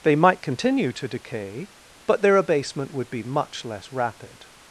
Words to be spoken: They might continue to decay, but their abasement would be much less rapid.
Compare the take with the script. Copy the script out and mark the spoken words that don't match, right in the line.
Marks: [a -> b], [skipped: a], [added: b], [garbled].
They might continue to decay, but their abasement would be much less rapid.